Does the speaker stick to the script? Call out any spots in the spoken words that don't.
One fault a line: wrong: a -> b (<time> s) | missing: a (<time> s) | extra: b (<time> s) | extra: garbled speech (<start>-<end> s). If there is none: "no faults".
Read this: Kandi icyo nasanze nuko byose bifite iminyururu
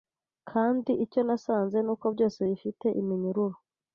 no faults